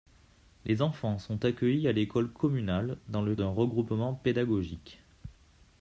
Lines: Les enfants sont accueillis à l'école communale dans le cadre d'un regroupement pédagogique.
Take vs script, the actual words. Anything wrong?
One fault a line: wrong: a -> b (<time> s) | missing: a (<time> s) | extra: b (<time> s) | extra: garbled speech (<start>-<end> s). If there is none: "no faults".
missing: cadre (3.4 s)